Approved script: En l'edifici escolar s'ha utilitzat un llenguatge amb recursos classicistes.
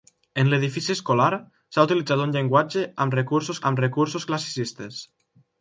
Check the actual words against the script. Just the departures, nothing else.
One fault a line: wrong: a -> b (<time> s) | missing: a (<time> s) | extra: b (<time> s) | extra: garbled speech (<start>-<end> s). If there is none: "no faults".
extra: amb recursos (3.7 s)